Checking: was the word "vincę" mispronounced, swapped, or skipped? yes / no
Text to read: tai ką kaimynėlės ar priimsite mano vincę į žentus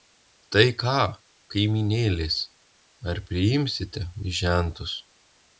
yes